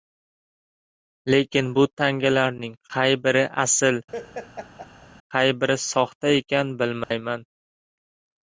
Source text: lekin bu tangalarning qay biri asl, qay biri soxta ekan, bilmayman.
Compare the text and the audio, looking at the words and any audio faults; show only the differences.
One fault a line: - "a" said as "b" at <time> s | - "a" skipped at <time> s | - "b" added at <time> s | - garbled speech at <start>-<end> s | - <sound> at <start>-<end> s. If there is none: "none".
- laugh at 4.1-5.1 s
- dropout at 7.0-7.1 s